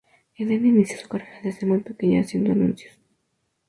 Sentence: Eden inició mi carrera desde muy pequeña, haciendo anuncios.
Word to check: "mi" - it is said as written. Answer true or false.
false